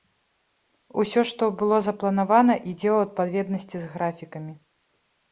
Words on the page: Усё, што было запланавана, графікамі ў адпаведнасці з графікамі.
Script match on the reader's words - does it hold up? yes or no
no